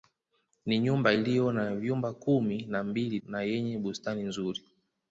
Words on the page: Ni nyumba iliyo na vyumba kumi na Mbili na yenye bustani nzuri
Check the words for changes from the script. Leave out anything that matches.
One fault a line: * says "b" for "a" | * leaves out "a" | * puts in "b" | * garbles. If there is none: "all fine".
all fine